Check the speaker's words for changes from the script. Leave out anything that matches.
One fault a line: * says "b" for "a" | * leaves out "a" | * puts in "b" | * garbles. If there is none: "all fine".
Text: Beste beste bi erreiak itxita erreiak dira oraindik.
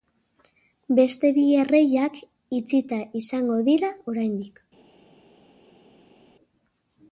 * leaves out "beste"
* says "izango" for "erreiak"